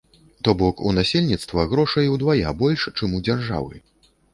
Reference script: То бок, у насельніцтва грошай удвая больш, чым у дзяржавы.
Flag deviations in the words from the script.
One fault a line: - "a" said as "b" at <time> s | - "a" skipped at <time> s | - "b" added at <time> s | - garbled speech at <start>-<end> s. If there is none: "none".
none